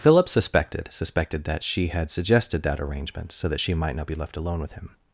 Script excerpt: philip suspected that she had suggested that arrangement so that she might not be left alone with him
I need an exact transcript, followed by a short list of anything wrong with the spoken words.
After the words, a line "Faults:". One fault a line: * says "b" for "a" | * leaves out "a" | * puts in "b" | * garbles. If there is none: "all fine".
philip suspected suspected that she had suggested that arrangement so that she might not be left alone with him
Faults:
* puts in "suspected"